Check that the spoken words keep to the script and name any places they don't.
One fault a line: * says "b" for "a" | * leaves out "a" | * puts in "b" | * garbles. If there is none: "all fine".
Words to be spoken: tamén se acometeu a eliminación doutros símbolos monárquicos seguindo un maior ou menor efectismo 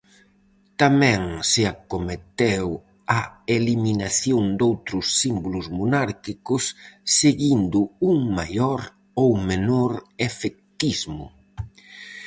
all fine